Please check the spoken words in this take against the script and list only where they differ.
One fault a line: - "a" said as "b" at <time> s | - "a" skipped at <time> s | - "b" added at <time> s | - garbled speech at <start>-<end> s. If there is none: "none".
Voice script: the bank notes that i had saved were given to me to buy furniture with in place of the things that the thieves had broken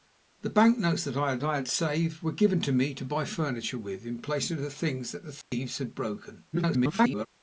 - "i had" added at 1.4 s
- garbled speech at 6.5-7.3 s